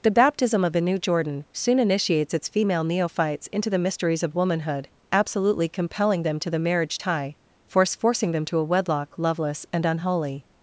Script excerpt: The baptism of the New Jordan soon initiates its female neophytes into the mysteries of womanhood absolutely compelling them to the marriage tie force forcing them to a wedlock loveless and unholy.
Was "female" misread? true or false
false